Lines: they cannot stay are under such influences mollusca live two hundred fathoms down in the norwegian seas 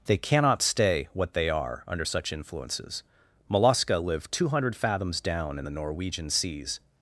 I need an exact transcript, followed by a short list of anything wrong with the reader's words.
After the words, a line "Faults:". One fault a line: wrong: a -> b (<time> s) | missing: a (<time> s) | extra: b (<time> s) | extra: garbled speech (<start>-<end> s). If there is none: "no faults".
they cannot stay what they are under such influences mollusca live two hundred fathoms down in the norwegian seas
Faults:
extra: what they (1.1 s)